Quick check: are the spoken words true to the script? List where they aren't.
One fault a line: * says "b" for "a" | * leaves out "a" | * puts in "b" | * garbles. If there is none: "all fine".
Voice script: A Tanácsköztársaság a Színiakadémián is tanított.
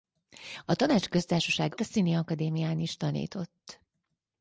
all fine